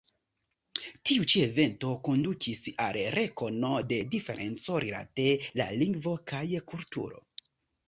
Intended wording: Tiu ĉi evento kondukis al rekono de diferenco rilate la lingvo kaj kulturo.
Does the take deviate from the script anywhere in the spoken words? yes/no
no